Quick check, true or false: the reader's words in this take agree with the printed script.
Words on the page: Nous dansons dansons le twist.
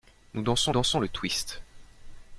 true